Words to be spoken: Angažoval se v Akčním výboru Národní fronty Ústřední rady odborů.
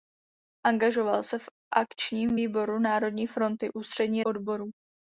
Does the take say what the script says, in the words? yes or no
no